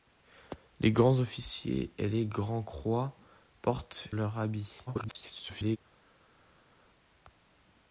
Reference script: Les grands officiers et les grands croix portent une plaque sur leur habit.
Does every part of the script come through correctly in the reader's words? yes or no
no